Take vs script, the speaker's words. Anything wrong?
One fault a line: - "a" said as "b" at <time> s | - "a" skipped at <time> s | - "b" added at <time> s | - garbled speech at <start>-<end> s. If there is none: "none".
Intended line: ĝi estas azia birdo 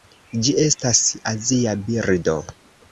none